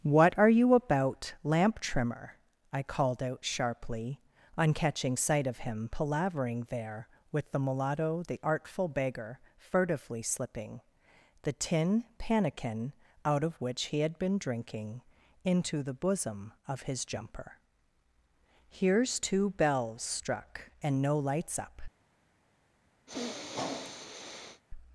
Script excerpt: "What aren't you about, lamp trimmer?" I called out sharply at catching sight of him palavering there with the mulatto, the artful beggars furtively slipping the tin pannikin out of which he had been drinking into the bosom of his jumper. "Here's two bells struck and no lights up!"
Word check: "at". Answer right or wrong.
wrong